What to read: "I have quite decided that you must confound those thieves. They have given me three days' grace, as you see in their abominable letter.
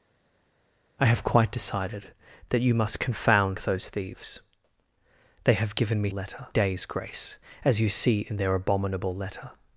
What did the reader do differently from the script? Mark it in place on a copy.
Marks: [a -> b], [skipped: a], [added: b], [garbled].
"I have quite decided that you must confound those thieves. They have given me [three -> letter] days' grace, as you see in their abominable letter.